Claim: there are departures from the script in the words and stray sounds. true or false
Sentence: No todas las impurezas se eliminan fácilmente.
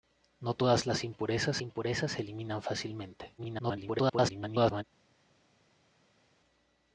true